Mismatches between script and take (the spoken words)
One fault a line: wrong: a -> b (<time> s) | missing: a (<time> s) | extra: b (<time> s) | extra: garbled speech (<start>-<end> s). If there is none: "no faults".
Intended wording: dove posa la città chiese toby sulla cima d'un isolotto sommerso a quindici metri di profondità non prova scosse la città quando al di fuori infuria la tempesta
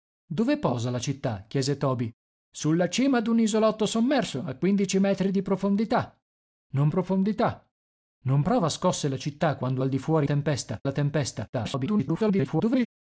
extra: profondità non (6.9 s)
wrong: infuria -> tempesta (10.2 s)
extra: garbled speech (11.5-12.9 s)